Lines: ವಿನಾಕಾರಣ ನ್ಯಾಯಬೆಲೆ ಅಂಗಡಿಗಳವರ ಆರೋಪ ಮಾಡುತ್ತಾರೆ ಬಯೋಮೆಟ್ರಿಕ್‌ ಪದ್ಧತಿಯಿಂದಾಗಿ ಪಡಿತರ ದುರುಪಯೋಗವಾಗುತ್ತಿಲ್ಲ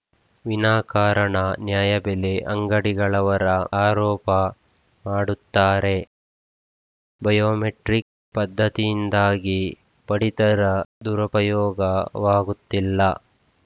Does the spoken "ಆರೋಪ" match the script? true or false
true